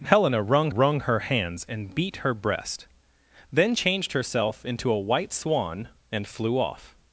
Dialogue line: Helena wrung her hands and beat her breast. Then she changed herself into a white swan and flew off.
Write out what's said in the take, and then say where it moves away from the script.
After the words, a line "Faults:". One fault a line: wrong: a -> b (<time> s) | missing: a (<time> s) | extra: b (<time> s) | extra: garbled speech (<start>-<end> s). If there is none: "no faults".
Helena wrung wrung her hands and beat her breast. Then changed herself into a white swan and flew off.
Faults:
extra: wrung (0.7 s)
missing: she (3.7 s)